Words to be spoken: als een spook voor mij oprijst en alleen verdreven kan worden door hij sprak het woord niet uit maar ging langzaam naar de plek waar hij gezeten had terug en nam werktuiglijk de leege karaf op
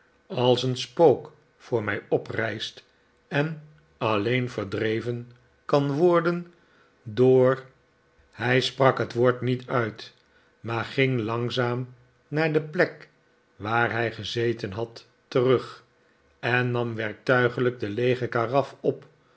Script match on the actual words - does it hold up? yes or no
yes